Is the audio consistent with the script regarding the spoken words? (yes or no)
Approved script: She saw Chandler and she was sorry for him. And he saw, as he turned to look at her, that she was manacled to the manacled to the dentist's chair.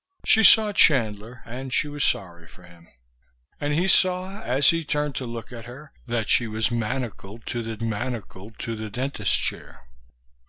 yes